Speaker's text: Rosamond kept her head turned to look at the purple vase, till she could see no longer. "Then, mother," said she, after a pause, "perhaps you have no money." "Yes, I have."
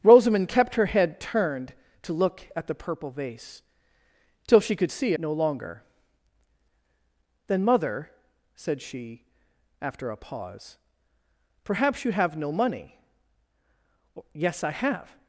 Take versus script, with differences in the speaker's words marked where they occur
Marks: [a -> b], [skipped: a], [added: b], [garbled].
Rosamond kept her head turned to look at the purple vase, till she could see no longer. "Then, mother," said she, after a pause, "perhaps you have no money." "Yes, I have."